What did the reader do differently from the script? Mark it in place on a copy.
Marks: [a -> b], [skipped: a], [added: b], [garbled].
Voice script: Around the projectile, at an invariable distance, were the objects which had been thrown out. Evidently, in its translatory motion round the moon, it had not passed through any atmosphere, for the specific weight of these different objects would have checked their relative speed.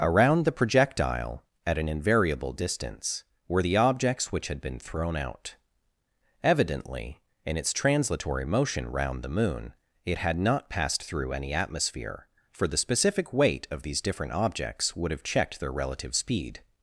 Around the projectile, at an invariable distance, were the objects which had been thrown out. Evidently, in its translatory motion round the moon, it had not passed through any atmosphere, for the specific weight of these different objects would have checked their relative speed.